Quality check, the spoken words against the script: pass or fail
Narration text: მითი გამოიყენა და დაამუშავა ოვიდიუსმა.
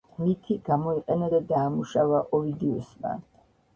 pass